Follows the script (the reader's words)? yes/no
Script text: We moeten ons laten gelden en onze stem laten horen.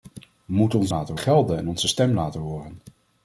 yes